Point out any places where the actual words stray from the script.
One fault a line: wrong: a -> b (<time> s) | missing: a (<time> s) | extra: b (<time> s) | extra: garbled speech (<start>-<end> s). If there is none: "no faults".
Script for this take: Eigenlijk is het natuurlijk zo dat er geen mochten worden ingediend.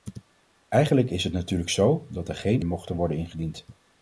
no faults